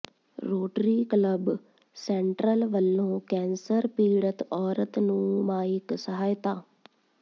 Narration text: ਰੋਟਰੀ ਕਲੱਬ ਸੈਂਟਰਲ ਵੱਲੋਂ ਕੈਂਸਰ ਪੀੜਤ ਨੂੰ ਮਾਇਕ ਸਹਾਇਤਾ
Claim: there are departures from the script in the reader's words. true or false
true